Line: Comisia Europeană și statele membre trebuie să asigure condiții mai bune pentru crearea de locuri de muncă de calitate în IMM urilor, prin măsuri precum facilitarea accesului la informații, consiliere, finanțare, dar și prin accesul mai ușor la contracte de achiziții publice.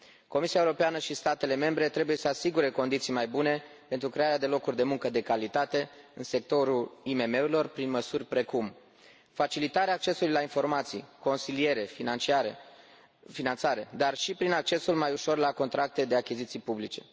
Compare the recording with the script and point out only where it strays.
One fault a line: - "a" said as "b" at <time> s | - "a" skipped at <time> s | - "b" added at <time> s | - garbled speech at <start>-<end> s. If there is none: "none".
- "sectorul" added at 6.2 s